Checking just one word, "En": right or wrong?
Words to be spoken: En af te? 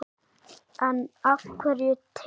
right